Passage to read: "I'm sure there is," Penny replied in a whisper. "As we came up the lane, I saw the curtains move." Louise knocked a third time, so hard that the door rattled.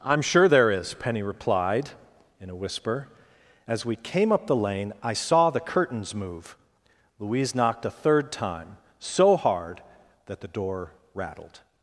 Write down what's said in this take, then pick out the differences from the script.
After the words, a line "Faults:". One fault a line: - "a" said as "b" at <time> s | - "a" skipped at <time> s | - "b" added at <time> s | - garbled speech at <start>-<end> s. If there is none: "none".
"I'm sure there is," Penny replied in a whisper. "As we came up the lane, I saw the curtains move." Louise knocked a third time, so hard that the door rattled.
Faults:
none